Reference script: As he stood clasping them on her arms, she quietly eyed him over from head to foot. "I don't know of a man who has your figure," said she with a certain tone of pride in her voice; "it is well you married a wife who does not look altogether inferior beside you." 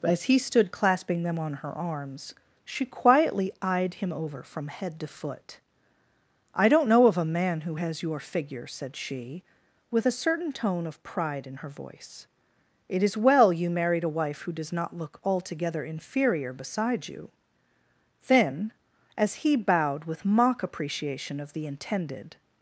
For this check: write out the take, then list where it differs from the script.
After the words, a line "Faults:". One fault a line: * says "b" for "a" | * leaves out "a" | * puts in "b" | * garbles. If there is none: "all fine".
As he stood clasping them on her arms, she quietly eyed him over from head to foot. "I don't know of a man who has your figure," said she with a certain tone of pride in her voice; "it is well you married a wife who does not look altogether inferior beside you." Then as he bowed with mock appreciation of the intended
Faults:
* puts in "Then as he bowed with mock appreciation of the intended"